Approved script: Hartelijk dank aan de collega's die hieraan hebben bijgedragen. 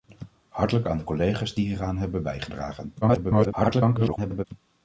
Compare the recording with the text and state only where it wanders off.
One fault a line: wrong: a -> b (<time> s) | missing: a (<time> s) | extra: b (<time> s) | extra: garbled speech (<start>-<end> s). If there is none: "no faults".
missing: dank (0.9 s)
extra: garbled speech (3.0-4.4 s)